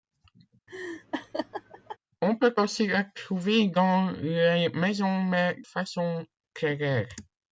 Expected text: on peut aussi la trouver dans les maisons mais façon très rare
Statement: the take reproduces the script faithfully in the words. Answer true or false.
true